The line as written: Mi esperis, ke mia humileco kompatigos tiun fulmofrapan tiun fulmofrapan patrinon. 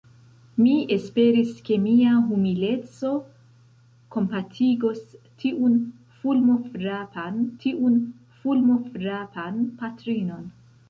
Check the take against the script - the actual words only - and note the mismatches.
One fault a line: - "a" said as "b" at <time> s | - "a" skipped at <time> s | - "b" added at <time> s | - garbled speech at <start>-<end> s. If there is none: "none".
none